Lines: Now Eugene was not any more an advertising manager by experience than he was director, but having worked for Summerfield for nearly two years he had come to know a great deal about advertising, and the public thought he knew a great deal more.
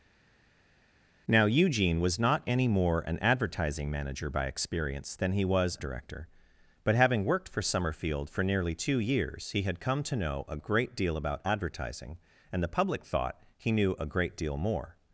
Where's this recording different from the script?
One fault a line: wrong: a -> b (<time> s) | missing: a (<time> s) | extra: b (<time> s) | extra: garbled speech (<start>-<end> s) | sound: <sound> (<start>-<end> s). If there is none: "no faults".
no faults